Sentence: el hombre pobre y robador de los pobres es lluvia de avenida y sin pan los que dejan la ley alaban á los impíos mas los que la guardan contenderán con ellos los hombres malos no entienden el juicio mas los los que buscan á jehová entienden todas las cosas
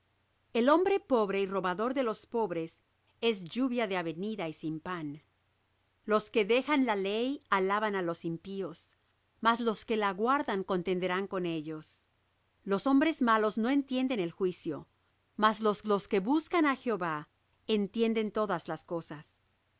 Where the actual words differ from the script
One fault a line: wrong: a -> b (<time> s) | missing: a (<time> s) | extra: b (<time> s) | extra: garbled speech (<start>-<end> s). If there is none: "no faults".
no faults